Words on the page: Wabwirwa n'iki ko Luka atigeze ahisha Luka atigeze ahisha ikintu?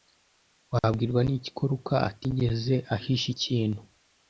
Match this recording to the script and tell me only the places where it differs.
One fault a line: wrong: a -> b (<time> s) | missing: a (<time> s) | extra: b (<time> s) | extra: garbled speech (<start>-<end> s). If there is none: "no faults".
missing: Luka atigeze ahisha (3.3 s)